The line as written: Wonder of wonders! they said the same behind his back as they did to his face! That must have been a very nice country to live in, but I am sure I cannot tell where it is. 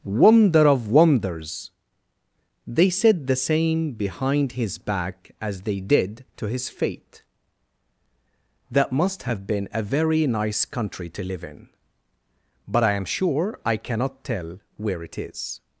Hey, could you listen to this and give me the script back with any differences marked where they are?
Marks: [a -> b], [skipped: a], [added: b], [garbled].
Wonder of wonders! they said the same behind his back as they did to his [face! -> fate] That must have been a very nice country to live in, but I am sure I cannot tell where it is.